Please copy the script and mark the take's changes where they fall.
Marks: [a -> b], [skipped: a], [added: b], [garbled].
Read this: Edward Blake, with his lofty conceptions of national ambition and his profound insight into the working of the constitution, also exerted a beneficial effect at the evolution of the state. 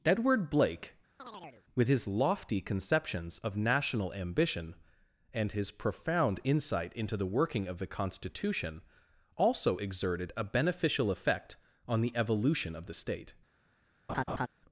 Edward Blake, with his lofty conceptions of national ambition and his profound insight into the working of the constitution, also exerted a beneficial effect [at -> on] the evolution of the state.